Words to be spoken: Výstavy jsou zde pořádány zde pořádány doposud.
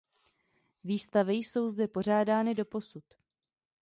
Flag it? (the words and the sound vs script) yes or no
yes